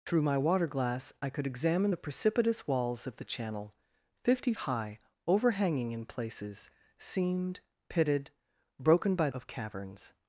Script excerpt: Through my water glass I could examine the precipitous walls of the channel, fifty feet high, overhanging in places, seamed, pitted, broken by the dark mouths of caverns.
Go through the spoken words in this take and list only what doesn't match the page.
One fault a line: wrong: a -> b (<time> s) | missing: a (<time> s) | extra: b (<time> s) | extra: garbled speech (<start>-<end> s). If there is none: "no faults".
missing: feet (4.5 s)
missing: the dark mouths (9.3 s)